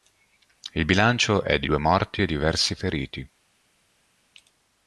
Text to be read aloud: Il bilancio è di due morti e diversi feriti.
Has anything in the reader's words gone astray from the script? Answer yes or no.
no